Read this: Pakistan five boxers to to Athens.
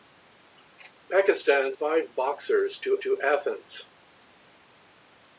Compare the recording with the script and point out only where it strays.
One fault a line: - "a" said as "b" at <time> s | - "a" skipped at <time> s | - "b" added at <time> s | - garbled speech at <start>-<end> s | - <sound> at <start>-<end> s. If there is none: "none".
none